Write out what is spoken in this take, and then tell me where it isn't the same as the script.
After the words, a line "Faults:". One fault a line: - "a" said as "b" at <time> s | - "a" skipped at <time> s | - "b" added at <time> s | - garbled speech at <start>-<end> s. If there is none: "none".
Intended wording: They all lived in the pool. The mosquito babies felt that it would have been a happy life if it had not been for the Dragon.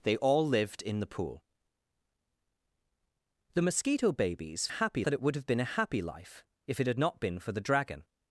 They all lived in the pool. The mosquito babies happy that it would have been a happy life if it had not been for the Dragon.
Faults:
- "felt" said as "happy" at 4.7 s